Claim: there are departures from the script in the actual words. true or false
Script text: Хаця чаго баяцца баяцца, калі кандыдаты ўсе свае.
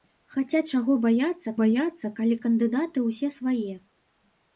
false